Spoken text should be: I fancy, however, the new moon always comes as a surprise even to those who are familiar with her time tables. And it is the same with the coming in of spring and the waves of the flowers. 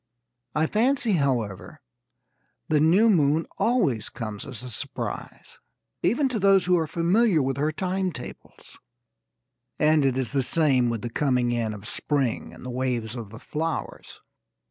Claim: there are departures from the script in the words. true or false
false